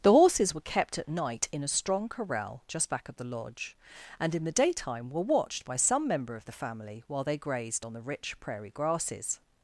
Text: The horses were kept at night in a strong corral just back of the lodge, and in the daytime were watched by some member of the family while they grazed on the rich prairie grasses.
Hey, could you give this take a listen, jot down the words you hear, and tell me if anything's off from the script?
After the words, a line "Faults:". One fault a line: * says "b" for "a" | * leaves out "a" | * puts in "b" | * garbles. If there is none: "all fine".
The horses were kept at night in a strong corral just back of the lodge, and in the daytime were watched by some member of the family while they grazed on the rich prairie grasses.
Faults:
all fine